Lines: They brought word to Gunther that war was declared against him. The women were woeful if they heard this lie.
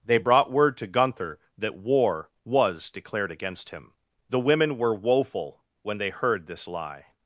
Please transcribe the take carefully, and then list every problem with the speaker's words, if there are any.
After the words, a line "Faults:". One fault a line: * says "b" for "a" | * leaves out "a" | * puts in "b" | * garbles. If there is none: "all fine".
They brought word to Gunther that war was declared against him. The women were woeful when they heard this lie.
Faults:
* says "when" for "if"